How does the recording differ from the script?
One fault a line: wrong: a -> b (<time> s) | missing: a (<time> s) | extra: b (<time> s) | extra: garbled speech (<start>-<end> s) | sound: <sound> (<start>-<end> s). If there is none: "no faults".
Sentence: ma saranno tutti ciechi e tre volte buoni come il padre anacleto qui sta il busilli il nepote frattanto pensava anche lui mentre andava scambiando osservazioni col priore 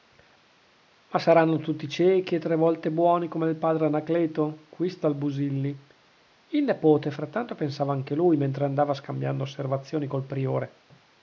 no faults